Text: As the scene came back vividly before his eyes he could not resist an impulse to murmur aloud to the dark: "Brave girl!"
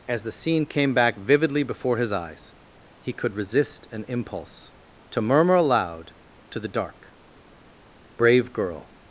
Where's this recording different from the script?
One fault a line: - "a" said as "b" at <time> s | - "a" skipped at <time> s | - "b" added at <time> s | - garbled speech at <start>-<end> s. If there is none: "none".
- "not" skipped at 3.4 s